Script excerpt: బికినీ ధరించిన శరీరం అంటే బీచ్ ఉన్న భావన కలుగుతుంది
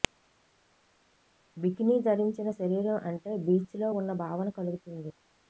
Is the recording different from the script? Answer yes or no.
yes